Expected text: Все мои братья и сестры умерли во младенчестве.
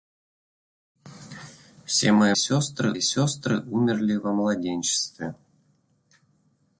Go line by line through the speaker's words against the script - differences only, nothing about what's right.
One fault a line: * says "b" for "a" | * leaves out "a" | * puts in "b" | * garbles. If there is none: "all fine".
* says "сестры" for "братья"